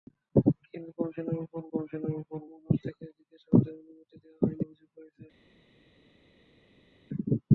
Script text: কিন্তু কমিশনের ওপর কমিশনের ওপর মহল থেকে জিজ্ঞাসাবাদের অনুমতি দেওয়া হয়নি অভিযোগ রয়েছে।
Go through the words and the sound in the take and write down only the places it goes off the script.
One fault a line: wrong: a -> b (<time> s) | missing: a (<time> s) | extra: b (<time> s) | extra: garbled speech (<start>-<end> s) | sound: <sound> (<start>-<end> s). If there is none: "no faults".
no faults